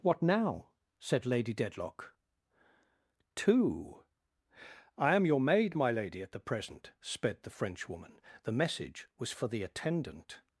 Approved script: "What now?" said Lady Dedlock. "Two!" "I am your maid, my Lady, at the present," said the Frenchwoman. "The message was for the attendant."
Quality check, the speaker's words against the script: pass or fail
fail